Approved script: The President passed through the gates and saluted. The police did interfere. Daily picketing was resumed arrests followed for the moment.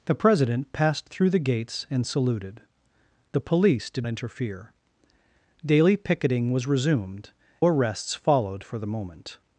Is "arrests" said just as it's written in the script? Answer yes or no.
yes